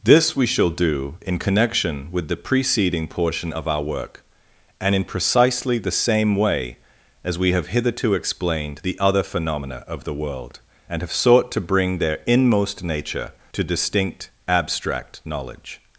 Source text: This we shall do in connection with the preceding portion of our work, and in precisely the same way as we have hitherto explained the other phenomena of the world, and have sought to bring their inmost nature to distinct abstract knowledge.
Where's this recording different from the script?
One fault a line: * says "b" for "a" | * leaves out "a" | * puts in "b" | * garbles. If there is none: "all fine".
all fine